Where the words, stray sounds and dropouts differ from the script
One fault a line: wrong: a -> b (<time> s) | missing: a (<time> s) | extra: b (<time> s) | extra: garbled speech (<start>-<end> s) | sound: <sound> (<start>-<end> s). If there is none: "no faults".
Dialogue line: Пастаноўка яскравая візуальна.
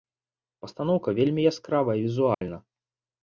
extra: вельмі (1.2 s)
sound: dropout (2.3-2.4 s)